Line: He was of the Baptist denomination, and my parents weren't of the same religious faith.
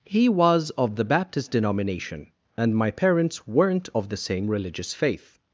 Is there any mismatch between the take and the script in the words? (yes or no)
no